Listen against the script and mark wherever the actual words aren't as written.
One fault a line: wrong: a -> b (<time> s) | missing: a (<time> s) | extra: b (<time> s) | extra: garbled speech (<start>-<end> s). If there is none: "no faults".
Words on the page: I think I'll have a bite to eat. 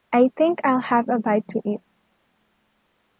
no faults